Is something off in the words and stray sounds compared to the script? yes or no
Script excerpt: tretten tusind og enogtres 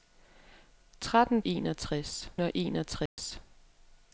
yes